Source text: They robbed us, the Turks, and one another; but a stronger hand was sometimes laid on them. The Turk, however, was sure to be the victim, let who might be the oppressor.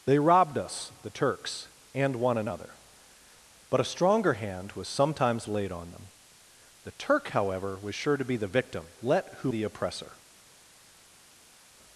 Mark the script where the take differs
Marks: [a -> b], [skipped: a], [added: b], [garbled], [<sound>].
They robbed us, the Turks, and one another; but a stronger hand was sometimes laid on them. The Turk, however, was sure to be the victim, let who [skipped: might be] the oppressor.